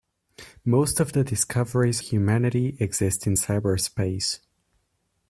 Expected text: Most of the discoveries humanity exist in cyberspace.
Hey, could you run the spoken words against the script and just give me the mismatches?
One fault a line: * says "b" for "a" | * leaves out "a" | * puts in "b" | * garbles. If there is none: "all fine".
all fine